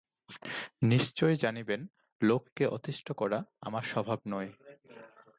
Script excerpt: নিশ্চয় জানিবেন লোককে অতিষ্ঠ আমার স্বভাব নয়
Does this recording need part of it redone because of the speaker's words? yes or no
yes